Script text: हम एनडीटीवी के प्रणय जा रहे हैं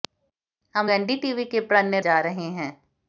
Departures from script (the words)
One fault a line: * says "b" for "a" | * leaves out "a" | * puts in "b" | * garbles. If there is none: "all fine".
all fine